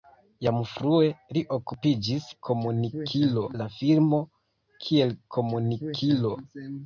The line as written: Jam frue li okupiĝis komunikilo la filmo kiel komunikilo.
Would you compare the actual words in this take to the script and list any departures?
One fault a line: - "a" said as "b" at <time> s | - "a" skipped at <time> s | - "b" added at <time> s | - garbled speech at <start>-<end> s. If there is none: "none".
none